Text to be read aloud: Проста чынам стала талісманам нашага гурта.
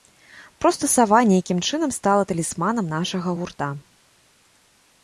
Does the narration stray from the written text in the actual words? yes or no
yes